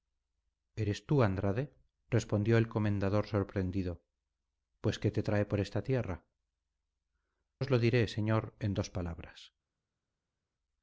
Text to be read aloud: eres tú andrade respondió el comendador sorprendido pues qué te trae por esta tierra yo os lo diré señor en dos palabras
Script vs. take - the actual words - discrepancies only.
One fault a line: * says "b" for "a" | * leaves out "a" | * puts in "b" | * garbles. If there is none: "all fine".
* leaves out "yo"